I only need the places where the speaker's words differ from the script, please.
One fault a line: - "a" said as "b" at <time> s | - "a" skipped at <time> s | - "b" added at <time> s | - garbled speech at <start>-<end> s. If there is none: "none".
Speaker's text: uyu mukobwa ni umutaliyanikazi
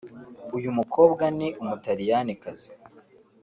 none